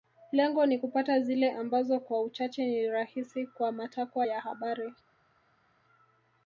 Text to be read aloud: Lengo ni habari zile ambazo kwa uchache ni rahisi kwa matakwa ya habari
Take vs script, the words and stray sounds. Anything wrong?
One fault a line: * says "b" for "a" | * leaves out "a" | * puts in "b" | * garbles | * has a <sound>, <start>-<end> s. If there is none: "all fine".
* says "kupata" for "habari"